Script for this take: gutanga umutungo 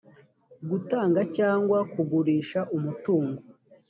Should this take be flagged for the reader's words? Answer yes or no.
yes